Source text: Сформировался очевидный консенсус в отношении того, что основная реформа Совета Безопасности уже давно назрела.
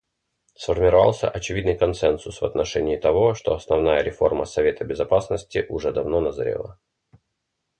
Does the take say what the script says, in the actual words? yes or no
yes